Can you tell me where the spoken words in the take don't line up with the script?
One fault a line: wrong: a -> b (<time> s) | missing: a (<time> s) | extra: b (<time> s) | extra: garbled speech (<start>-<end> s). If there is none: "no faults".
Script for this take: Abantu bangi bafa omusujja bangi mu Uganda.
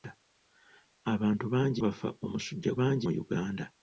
no faults